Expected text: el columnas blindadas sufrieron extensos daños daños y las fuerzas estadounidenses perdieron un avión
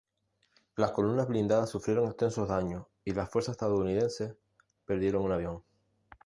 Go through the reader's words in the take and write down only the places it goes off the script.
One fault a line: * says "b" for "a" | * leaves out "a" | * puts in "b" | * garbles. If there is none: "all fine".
* says "las" for "el"
* leaves out "daños"